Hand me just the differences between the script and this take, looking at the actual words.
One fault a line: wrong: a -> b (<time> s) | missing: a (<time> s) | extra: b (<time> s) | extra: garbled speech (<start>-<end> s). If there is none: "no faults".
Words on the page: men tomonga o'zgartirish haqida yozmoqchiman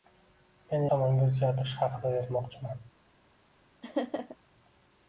no faults